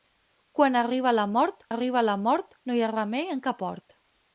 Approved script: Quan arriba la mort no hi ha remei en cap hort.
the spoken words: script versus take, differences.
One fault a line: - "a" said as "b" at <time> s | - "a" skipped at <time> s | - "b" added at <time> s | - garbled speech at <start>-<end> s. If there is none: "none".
- "arriba la mort" added at 1.7 s